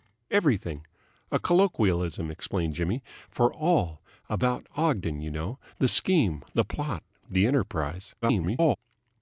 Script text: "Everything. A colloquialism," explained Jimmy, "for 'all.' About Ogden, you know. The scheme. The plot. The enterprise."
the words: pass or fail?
fail